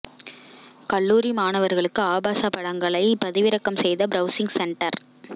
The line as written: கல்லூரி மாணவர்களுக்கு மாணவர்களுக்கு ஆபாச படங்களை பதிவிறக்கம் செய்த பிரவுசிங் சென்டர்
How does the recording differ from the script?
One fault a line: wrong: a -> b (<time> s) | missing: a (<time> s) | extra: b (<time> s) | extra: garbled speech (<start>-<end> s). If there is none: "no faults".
missing: மாணவர்களுக்கு (2.0 s)